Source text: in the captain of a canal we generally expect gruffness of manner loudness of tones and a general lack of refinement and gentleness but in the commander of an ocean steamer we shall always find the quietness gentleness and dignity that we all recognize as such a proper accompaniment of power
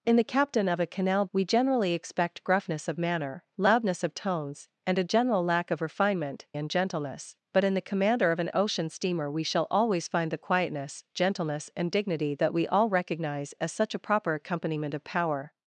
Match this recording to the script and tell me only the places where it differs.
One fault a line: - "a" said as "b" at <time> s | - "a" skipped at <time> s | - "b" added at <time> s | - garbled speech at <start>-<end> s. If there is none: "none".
none